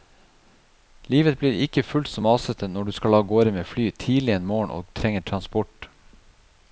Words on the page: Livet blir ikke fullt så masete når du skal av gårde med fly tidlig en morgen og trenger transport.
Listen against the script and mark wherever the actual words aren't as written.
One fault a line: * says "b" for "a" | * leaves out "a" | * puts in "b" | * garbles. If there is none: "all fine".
all fine